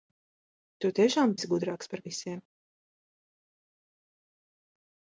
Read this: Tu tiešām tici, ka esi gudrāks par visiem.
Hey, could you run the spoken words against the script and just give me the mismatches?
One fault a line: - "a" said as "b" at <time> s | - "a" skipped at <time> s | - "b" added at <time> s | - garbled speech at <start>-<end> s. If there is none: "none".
- "tici ka" skipped at 1.4 s